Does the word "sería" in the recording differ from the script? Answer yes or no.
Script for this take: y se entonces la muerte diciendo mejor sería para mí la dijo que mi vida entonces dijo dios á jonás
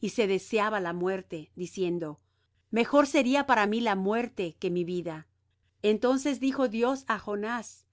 no